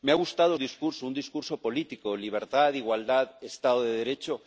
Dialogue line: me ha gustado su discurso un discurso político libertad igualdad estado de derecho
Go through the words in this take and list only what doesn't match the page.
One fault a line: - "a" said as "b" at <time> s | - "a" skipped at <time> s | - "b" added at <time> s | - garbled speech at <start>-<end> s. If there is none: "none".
- "su" skipped at 0.6 s